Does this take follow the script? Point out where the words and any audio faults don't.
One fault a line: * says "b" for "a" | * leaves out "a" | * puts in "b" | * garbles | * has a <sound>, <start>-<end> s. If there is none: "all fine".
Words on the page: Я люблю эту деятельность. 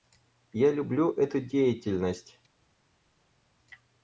all fine